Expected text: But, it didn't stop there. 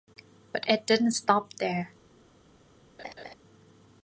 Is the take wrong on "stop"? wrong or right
right